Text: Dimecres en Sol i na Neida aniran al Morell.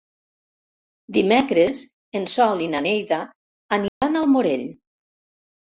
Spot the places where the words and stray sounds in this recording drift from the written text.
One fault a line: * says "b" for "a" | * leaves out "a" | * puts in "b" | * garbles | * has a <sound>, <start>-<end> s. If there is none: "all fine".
* has a dropout, 3.9-4.0 s